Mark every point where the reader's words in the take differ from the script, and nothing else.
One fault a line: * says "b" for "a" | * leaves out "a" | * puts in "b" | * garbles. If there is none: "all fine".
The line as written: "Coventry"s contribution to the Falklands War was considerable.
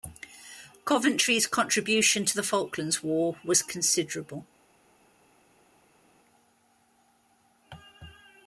all fine